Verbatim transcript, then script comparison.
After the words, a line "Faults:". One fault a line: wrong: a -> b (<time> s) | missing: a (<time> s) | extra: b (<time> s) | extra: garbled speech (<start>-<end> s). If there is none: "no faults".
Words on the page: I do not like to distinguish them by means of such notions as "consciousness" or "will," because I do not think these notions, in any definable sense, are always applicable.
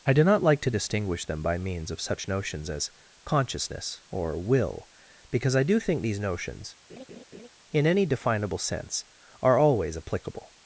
I do not like to distinguish them by means of such notions as "consciousness" or "will," because I do think these notions, in any definable sense, are always applicable.
Faults:
missing: not (5.8 s)